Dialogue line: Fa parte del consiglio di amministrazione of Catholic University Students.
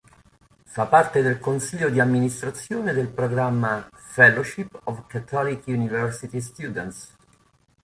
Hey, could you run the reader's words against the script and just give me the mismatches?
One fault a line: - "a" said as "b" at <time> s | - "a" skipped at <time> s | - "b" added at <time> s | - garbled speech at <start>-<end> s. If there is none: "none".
- "del programma Fellowship" added at 2.9 s